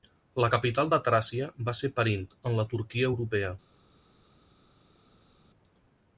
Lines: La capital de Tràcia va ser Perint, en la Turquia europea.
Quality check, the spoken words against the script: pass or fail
pass